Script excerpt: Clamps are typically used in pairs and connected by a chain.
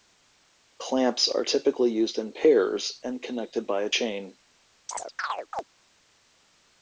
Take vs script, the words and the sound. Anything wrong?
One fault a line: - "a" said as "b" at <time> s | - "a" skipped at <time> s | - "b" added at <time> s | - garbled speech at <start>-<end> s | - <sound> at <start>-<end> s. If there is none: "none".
- chirp at 4.9-5.6 s